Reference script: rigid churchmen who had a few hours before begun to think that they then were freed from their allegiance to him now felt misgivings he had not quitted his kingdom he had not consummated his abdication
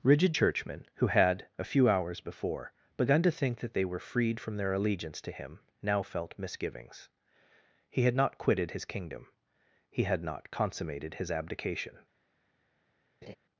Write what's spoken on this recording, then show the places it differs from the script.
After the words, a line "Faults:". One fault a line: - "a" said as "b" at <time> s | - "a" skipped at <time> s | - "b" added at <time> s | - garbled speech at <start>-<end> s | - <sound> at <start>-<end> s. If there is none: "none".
rigid churchmen who had a few hours before begun to think that they were freed from their allegiance to him now felt misgivings he had not quitted his kingdom he had not consummated his abdication
Faults:
- "then" skipped at 3.8 s
- laugh at 13.2-13.4 s